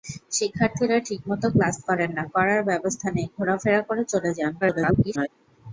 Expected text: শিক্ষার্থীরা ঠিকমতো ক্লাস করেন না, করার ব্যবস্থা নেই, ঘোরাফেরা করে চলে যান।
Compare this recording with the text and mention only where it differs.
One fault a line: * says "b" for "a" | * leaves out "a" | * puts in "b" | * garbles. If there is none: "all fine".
* garbles